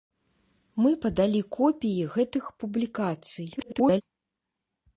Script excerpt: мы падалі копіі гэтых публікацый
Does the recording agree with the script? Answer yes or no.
no